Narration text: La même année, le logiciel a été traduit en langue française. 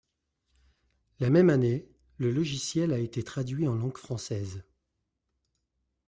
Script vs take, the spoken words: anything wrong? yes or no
no